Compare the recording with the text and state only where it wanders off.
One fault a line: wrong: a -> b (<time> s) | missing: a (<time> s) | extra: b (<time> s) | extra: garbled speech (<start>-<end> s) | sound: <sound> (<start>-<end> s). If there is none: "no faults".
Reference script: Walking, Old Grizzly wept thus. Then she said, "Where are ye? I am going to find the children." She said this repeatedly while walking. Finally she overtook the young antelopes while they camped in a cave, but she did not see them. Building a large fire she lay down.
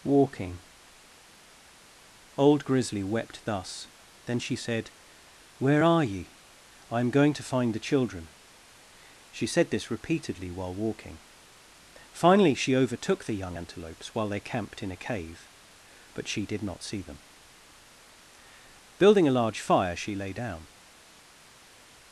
no faults